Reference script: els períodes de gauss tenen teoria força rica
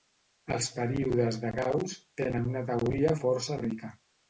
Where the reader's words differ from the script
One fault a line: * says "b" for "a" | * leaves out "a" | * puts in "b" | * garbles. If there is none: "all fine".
* puts in "una"